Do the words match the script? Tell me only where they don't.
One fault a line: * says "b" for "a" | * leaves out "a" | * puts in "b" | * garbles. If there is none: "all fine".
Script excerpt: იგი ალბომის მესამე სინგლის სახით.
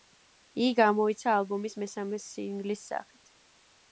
* puts in "გამოიცა"